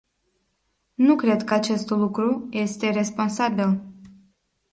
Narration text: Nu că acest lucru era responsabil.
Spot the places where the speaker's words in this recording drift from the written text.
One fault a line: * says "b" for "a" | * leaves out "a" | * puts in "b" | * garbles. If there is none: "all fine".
* puts in "cred"
* says "este" for "era"